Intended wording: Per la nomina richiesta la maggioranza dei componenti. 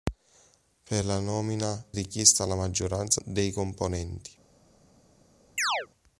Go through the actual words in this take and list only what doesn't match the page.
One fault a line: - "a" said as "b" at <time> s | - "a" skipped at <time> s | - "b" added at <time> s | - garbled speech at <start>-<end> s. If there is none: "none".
none